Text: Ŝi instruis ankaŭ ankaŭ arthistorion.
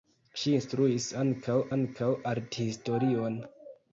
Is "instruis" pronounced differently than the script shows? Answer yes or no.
no